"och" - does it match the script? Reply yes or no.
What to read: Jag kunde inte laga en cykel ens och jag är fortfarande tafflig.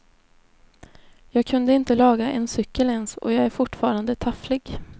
yes